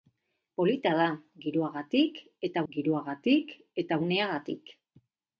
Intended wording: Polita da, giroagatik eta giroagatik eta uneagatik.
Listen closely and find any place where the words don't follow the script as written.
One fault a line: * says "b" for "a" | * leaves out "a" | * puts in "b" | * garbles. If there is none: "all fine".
all fine